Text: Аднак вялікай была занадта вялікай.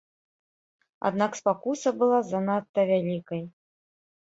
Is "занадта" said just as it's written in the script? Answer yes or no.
yes